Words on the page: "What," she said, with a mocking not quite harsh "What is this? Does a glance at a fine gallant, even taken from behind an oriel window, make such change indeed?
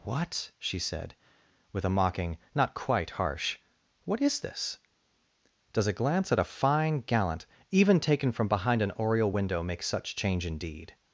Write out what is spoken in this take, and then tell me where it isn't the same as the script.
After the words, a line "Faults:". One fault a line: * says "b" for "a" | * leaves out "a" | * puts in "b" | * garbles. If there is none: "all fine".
"What," she said, with a mocking not quite harsh "What is this? Does a glance at a fine gallant, even taken from behind an oriel window, make such change indeed?
Faults:
all fine